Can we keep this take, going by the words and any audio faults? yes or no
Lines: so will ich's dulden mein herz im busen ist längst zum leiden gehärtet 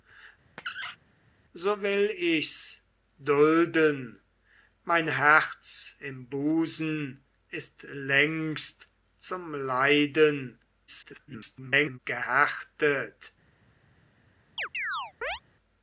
no